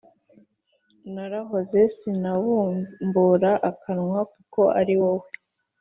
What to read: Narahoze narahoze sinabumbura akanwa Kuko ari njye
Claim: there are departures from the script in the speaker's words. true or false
true